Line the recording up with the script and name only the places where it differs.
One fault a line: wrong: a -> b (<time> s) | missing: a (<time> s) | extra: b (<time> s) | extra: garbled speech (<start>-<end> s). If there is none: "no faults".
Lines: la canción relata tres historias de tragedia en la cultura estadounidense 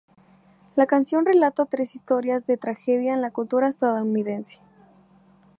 no faults